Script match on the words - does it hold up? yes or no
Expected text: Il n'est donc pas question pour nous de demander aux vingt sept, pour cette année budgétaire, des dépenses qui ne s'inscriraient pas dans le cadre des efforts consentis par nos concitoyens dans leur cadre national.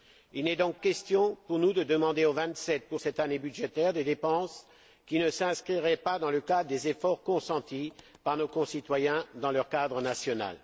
no